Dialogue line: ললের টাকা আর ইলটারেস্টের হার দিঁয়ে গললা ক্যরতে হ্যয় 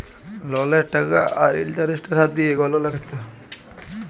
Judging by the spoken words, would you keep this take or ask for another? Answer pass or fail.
pass